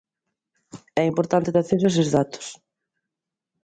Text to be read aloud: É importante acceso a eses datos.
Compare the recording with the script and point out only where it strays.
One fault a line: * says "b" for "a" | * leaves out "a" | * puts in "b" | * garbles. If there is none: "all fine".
all fine